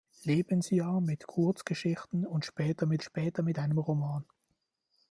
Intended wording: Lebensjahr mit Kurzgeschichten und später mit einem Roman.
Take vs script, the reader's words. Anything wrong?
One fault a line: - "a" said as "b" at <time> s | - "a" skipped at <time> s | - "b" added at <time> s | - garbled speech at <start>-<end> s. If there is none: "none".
- "später mit" added at 3.0 s